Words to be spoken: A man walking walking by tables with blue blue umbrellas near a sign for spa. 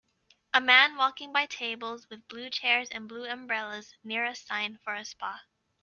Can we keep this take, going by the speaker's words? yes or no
no